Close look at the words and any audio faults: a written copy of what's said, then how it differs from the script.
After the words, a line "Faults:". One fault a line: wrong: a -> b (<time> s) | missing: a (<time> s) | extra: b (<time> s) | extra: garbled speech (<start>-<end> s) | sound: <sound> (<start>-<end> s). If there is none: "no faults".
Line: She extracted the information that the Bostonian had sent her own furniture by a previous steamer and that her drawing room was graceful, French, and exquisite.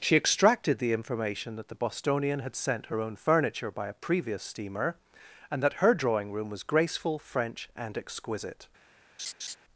She extracted the information that the Bostonian had sent her own furniture by a previous steamer and that her drawing room was graceful, French, and exquisite.
Faults:
sound: laugh (9.2-9.6 s)